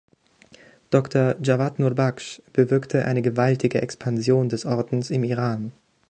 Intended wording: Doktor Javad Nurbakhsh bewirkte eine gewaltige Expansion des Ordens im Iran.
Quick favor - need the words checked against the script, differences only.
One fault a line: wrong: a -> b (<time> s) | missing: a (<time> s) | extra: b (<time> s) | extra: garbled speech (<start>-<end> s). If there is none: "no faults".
no faults